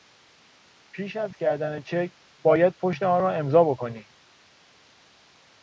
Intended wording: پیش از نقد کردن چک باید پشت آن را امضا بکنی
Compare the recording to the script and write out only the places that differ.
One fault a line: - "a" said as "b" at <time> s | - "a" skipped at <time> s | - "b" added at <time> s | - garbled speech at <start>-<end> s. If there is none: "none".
- "نقد" skipped at 1.4 s